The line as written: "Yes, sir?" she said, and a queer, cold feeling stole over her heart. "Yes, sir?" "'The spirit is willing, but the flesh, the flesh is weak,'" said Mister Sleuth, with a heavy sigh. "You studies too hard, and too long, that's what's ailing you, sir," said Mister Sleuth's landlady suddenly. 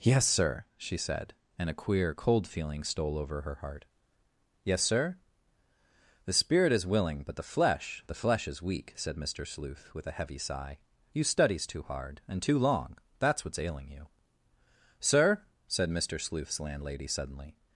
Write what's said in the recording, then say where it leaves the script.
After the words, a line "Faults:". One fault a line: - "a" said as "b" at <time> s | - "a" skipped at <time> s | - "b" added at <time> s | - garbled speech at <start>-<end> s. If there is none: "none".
"Yes, sir?" she said, and a queer, cold feeling stole over her heart. "Yes, sir?" "'The spirit is willing, but the flesh, the flesh is weak,'" said Mister Sleuth, with a heavy sigh. "You studies too hard, and too long, that's what's ailing you, sir," said Mister Sleuth's landlady suddenly.
Faults:
none